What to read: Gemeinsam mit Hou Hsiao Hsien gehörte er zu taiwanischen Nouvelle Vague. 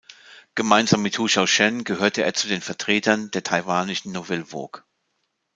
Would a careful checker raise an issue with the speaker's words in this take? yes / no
yes